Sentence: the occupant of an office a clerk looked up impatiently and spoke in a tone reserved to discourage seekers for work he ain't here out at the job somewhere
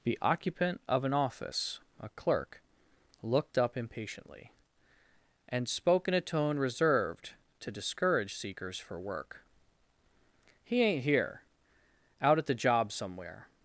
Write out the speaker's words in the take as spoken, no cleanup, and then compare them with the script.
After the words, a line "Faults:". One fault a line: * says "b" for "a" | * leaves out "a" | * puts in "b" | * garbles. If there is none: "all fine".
the occupant of an office a clerk looked up impatiently and spoke in a tone reserved to discourage seekers for work he ain't here out at the job somewhere
Faults:
all fine